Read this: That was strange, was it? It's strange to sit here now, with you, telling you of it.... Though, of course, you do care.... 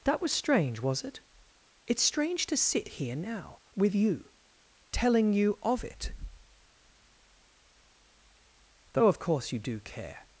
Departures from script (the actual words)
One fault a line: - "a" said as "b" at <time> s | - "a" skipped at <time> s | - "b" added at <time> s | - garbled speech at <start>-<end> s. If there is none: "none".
none